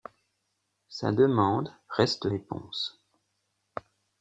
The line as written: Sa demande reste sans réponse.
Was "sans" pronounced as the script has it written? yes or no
no